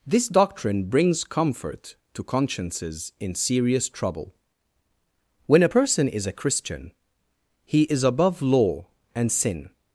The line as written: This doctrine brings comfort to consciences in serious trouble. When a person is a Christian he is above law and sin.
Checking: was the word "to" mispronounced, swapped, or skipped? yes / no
no